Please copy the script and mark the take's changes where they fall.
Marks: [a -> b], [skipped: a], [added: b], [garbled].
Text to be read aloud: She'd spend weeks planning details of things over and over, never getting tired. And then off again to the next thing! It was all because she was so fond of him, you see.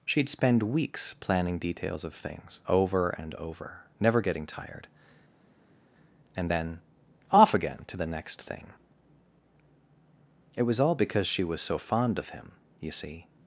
She'd spend weeks planning details of things over and over, never getting tired. And then off again to the next thing! It was all because she was so fond of him, you see.